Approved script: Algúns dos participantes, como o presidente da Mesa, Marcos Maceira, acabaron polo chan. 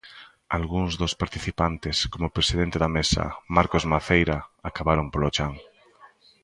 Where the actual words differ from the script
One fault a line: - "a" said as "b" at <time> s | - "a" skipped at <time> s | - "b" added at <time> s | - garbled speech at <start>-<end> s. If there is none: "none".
none